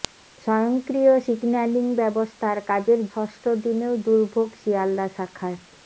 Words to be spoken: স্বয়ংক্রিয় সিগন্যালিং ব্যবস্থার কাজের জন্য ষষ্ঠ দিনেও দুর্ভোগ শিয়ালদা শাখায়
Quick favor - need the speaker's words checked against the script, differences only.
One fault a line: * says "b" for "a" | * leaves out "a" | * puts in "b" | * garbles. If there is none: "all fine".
* leaves out "জন্য"